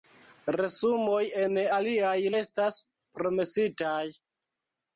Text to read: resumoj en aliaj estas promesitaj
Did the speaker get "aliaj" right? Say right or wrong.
right